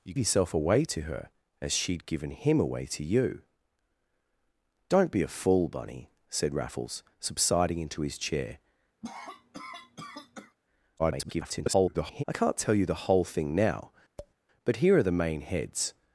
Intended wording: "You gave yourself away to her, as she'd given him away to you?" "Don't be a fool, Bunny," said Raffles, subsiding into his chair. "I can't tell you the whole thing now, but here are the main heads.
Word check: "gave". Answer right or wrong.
wrong